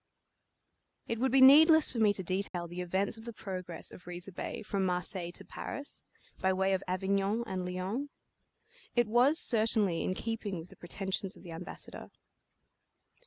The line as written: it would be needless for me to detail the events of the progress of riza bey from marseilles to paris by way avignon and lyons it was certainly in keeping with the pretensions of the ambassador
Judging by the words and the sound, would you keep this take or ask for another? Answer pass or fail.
fail